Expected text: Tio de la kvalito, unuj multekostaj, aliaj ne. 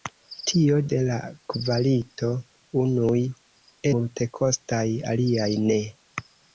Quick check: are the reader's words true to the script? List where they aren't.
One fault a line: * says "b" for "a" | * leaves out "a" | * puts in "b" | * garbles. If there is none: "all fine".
all fine